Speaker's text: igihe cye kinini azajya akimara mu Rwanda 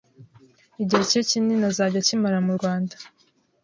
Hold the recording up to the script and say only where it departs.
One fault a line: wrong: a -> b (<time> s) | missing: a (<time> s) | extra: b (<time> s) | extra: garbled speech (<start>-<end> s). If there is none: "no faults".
no faults